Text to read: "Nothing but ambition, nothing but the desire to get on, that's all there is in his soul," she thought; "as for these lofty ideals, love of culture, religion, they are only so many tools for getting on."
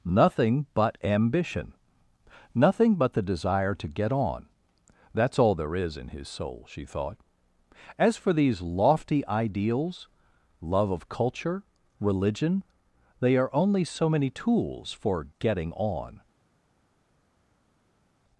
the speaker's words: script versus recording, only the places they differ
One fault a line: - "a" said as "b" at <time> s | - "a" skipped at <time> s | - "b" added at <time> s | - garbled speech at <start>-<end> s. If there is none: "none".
none